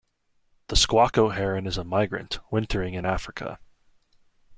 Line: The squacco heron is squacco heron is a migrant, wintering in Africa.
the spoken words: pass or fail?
fail